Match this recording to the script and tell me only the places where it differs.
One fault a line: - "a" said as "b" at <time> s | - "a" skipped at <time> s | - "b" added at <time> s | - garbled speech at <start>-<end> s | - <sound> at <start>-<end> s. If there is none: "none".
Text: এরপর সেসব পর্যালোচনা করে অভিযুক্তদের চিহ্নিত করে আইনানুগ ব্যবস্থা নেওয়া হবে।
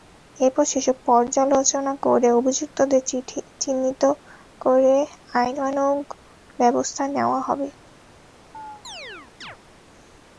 - chirp at 8.5-9.6 s